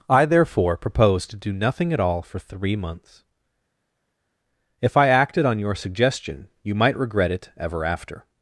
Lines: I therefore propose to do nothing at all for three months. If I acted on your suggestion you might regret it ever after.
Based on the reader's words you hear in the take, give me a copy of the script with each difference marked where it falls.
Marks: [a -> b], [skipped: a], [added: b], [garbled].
I therefore propose to do nothing at all for three months. If I acted on your suggestion you might regret it ever after.